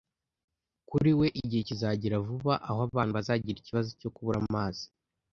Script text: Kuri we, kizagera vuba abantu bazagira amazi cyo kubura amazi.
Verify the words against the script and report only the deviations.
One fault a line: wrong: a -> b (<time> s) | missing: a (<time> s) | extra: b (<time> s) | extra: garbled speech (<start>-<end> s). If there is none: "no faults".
extra: igihe (1.4 s)
extra: aho (2.7 s)
wrong: amazi -> ikibazo (3.6 s)